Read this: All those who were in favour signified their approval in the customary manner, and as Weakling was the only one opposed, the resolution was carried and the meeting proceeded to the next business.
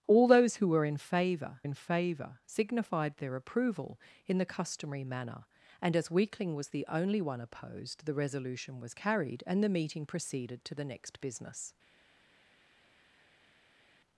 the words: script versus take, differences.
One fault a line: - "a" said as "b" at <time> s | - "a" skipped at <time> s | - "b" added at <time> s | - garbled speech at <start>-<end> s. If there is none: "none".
- "in favour" added at 1.6 s